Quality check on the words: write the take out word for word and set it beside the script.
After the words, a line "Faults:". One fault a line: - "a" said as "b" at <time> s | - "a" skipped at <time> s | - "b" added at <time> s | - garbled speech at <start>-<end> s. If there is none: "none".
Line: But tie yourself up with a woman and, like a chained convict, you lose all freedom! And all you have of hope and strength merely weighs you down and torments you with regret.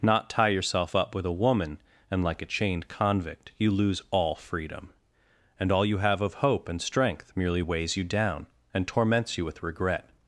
Not tie yourself up with a woman and, like a chained convict, you lose all freedom! And all you have of hope and strength merely weighs you down and torments you with regret.
Faults:
- "But" said as "Not" at 0.0 s